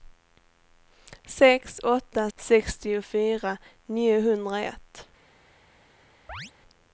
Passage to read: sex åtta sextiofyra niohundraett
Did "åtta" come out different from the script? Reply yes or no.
no